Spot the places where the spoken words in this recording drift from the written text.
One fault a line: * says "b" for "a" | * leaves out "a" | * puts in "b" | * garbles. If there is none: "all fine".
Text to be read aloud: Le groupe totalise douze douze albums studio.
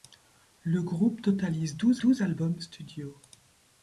all fine